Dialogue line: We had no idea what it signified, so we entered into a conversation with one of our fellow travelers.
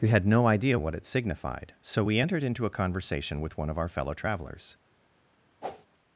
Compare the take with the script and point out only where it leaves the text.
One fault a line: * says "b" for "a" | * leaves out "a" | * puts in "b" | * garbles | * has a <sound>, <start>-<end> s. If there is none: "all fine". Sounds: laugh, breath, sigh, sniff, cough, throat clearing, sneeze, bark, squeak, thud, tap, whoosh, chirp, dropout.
* has a whoosh, 5.6-5.9 s